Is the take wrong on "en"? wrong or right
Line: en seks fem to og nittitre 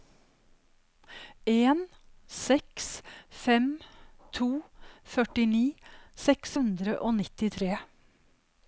right